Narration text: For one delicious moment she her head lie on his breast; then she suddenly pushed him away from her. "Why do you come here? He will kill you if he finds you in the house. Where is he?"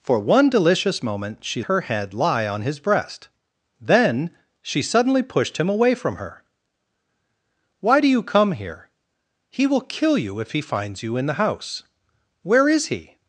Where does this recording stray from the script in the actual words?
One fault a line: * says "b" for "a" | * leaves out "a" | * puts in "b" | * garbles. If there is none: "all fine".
all fine